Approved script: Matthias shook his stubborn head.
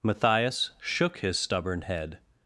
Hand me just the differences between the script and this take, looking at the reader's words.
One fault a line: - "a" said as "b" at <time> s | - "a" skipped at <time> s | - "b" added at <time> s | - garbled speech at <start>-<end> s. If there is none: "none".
none